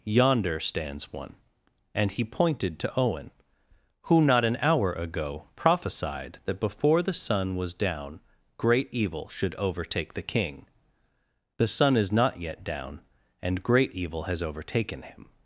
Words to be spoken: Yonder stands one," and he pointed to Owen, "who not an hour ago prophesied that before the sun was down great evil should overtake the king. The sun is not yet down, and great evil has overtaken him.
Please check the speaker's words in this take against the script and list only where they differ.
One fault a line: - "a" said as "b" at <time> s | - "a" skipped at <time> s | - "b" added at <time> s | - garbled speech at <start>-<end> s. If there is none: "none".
none